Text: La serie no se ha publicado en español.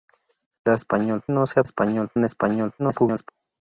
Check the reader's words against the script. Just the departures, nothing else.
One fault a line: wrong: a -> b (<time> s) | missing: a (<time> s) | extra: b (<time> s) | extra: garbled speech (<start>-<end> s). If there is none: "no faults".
wrong: serie -> español (0.7 s)
wrong: publicado -> español (1.6 s)
extra: garbled speech (2.8-3.3 s)